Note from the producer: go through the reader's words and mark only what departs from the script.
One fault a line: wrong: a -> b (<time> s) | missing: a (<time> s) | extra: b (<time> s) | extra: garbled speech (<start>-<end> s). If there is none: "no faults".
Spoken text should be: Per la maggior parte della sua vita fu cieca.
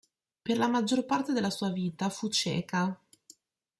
no faults